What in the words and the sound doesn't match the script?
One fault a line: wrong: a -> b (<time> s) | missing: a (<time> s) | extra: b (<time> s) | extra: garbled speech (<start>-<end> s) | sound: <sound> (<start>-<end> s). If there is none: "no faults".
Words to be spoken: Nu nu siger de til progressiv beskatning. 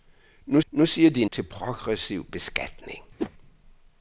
sound: whoosh (3.2-3.3 s)